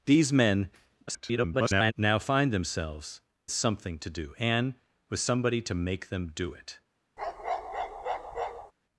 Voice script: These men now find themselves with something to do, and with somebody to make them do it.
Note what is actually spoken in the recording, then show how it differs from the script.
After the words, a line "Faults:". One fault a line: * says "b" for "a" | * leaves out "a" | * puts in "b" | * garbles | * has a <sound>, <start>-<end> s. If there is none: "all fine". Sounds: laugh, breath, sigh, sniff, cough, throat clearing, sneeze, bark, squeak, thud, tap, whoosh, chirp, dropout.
These men [garbled] now find themselves something to do, and with somebody to make them do it.
Faults:
* garbles
* leaves out "with"
* has a bark, 7.2-8.7 s